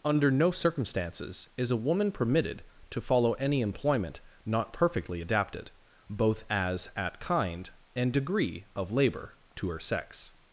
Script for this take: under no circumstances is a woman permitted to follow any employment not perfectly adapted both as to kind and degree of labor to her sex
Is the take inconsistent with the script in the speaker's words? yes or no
yes